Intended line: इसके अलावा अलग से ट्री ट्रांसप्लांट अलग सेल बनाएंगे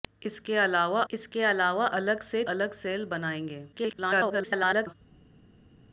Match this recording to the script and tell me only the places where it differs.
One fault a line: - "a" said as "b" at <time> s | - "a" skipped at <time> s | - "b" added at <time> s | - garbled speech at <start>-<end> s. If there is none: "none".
- "इसके अलावा" added at 1.1 s
- "ट्री ट्रांसप्लांट" skipped at 2.4 s
- garbled speech at 3.7-4.9 s